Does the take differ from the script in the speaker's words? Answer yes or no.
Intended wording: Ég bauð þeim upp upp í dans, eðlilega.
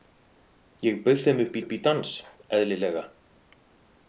no